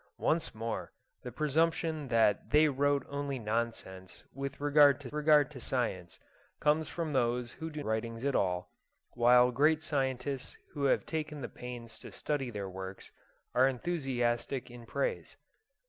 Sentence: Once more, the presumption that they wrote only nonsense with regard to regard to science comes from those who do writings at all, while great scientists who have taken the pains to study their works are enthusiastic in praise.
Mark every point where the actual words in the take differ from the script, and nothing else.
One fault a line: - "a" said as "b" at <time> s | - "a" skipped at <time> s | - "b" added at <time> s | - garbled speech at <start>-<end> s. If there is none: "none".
none